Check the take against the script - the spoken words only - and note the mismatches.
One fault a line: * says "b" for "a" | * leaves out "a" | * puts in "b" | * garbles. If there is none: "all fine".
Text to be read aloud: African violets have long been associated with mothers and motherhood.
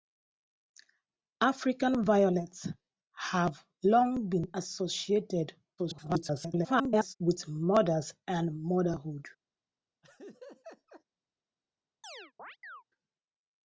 * garbles